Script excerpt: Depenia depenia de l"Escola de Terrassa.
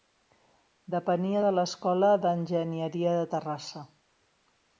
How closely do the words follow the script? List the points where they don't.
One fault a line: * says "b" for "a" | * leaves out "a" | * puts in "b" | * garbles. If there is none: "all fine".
* leaves out "depenia"
* puts in "d"Enginyeria"